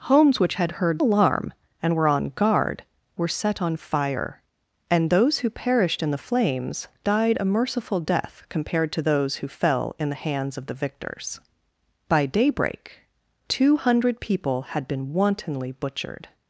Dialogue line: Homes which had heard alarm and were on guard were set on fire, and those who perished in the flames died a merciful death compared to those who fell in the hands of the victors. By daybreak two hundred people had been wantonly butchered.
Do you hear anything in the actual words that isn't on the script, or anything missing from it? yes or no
no